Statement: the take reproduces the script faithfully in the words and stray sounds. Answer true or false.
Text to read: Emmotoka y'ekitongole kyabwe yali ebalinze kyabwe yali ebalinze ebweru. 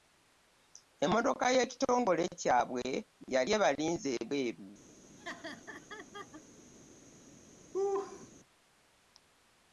false